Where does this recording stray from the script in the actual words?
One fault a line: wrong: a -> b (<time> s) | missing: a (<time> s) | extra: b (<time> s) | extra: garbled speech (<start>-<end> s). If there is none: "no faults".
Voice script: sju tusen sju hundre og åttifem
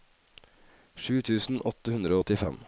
wrong: sju -> åtte (1.7 s)